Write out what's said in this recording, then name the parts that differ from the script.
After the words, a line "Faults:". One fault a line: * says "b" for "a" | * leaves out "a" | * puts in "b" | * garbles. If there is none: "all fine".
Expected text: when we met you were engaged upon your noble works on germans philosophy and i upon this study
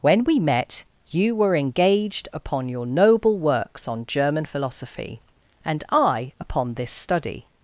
when we met you were engaged upon your noble works on german philosophy and i upon this study
Faults:
* says "german" for "germans"